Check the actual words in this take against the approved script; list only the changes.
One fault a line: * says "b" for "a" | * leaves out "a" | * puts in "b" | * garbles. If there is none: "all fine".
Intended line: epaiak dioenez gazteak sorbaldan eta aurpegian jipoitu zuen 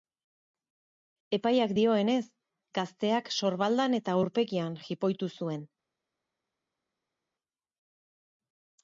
all fine